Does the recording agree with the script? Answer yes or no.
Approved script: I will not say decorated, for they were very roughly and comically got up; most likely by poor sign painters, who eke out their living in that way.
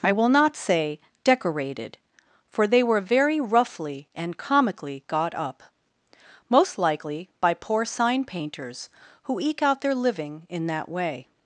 yes